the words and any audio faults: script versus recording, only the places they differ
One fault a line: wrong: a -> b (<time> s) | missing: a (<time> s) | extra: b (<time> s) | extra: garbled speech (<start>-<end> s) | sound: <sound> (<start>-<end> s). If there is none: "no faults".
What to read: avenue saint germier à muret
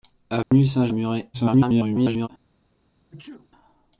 sound: dropout (0.4-0.5 s)
missing: germier (0.9 s)
extra: garbled speech (1.3-2.3 s)
sound: sneeze (3.1-3.5 s)